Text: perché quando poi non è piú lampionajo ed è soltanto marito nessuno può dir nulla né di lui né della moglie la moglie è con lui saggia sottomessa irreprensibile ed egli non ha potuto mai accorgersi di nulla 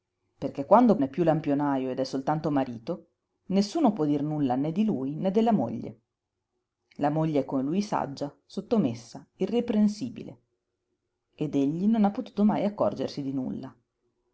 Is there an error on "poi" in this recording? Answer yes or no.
yes